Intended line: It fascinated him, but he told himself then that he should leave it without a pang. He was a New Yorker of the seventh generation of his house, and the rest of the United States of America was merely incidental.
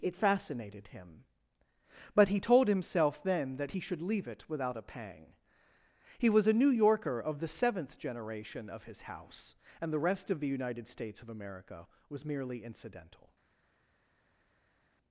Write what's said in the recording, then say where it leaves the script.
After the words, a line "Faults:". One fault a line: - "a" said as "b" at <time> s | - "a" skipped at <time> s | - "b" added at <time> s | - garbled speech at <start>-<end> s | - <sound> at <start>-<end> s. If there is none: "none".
It fascinated him, but he told himself then that he should leave it without a pang. He was a New Yorker of the seventh generation of his house, and the rest of the United States of America was merely incidental.
Faults:
none